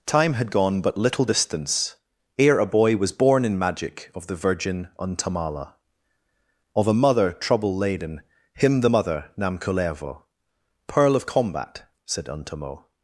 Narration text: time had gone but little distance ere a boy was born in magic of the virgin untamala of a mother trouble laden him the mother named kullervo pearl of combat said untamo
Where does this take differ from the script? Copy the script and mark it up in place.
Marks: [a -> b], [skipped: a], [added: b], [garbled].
time had gone but little distance ere a boy was born in magic of the virgin untamala of a mother trouble laden him the mother [named -> nam] kullervo pearl of combat said untamo